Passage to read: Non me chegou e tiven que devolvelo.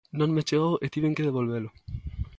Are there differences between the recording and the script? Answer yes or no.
no